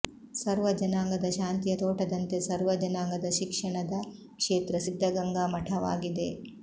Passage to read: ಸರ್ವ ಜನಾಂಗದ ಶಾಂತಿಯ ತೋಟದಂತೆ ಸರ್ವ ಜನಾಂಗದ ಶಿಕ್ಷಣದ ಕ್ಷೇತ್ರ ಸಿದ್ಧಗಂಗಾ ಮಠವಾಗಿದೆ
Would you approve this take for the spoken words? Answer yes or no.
yes